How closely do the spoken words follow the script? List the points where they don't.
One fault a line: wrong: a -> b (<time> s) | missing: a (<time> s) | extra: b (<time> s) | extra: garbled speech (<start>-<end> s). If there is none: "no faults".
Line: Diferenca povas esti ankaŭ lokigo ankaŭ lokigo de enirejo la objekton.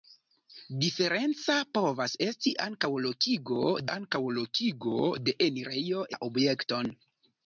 no faults